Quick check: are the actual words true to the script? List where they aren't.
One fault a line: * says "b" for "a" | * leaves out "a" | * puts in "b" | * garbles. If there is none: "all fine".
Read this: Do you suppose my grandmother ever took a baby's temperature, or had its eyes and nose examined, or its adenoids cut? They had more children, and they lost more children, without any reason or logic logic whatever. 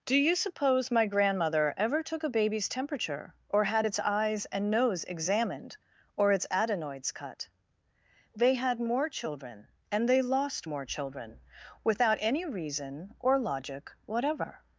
* leaves out "logic"